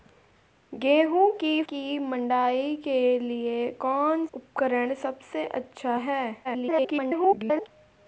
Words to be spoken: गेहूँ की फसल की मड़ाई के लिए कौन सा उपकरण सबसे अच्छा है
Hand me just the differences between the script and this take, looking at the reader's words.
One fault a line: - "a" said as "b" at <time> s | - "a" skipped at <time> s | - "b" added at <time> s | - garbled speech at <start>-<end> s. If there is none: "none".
- "फसल" skipped at 1.6 s
- "सा" skipped at 4.3 s
- garbled speech at 6.4-7.7 s